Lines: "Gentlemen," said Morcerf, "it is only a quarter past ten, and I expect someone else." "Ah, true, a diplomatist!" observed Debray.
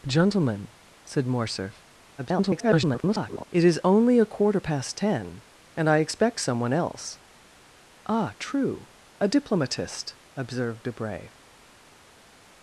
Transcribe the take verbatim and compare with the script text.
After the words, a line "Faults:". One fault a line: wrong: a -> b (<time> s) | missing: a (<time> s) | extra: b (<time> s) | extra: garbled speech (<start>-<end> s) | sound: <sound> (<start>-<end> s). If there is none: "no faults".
"Gentlemen," said Morcerf, [garbled] "it is only a quarter past ten, and I expect someone else." "Ah, true, a diplomatist!" observed Debray.
Faults:
extra: garbled speech (2.2-3.4 s)